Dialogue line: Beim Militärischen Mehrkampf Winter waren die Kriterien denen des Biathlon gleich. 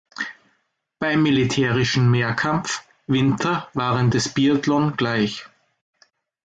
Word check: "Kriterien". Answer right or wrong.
wrong